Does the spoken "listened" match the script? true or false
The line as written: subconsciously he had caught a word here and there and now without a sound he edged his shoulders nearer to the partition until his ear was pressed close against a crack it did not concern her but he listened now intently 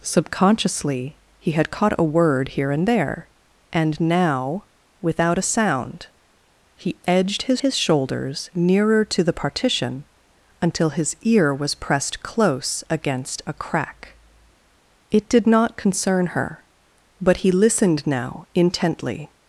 true